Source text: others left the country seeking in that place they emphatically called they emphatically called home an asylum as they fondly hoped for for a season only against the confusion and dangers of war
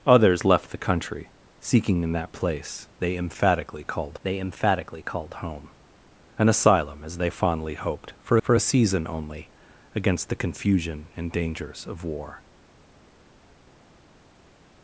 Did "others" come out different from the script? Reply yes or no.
no